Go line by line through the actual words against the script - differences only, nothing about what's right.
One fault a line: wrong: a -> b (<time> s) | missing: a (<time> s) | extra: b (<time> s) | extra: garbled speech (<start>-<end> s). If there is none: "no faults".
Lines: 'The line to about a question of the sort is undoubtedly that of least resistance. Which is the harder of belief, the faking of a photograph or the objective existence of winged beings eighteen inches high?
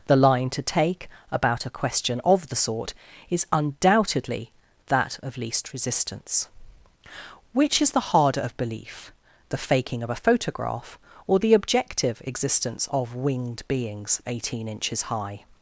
extra: take (0.6 s)